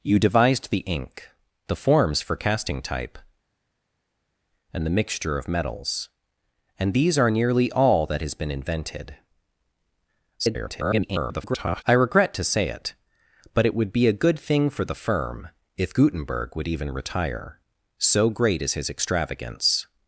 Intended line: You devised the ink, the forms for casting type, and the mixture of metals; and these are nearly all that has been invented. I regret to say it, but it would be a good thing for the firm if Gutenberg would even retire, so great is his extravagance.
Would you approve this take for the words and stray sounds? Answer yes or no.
no